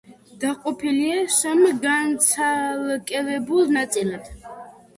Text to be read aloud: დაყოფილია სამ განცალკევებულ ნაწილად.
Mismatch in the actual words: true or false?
false